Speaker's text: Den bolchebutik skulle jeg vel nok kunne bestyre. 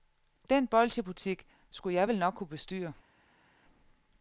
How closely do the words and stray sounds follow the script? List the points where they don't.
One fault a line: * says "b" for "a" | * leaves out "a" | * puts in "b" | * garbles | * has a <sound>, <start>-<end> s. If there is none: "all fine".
all fine